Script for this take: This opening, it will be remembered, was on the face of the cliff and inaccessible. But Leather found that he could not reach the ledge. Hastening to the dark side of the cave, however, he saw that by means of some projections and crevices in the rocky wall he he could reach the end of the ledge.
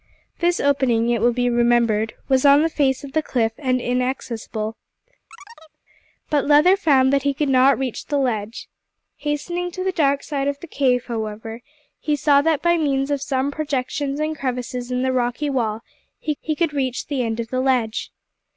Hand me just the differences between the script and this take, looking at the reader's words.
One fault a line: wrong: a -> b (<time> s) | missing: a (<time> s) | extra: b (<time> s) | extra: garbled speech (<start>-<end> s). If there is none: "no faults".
no faults